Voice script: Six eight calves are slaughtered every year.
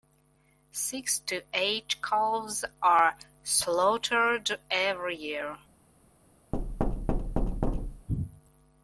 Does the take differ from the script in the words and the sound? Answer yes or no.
yes